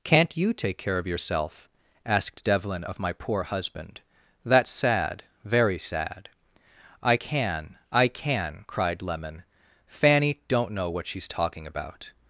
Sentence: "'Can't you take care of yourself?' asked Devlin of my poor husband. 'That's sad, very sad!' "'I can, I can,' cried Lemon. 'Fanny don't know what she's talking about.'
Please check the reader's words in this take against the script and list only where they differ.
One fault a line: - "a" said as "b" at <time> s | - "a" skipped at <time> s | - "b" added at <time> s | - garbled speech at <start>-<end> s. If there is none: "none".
none